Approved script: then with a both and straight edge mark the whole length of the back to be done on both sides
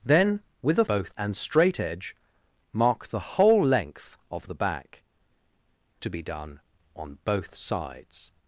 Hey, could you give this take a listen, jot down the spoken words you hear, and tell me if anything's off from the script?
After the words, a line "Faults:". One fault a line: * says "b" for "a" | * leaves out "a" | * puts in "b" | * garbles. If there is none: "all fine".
then with a both and straight edge mark the whole length of the back to be done on both sides
Faults:
all fine